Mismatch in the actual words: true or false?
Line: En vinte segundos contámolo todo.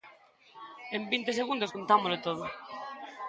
false